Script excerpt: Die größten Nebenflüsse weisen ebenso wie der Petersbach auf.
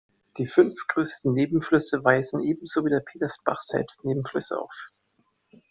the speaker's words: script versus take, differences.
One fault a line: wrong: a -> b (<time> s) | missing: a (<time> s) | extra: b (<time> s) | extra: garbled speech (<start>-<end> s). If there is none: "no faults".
extra: fünf (0.5 s)
extra: selbst Nebenflüsse (3.6 s)